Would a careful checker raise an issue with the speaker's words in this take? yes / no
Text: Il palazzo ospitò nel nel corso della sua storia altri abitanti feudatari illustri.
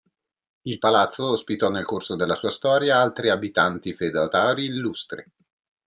yes